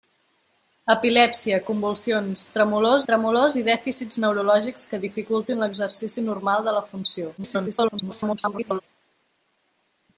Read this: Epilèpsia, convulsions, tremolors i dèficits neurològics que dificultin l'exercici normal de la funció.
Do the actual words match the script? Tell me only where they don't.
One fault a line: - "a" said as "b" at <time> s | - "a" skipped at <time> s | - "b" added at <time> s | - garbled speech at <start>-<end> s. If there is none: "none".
- "tremolors" added at 3.1 s
- garbled speech at 7.4-8.8 s